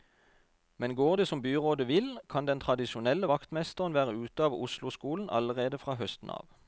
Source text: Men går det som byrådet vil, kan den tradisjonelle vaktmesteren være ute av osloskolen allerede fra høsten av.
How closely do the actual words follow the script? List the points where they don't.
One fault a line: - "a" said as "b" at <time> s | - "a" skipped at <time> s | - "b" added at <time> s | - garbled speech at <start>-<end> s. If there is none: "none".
none